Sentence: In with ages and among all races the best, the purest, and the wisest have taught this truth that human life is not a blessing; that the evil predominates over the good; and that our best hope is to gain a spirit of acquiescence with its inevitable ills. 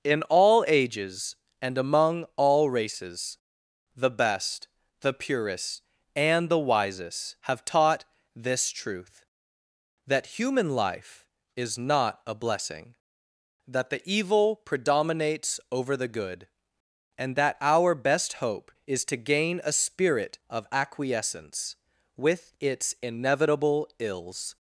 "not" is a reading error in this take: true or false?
false